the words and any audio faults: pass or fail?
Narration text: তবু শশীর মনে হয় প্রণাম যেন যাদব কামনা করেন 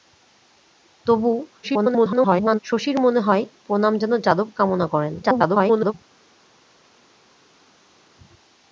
fail